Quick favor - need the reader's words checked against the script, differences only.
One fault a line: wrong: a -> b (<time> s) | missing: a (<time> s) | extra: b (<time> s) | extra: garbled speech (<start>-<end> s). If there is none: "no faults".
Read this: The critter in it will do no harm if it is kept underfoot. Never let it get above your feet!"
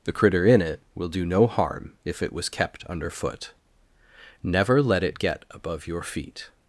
wrong: is -> was (2.3 s)